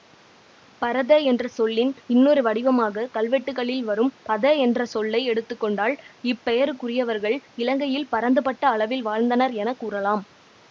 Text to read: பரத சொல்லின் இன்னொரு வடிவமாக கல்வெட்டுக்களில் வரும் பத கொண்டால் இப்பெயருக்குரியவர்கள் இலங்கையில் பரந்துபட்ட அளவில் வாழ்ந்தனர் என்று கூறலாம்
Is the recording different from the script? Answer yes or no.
yes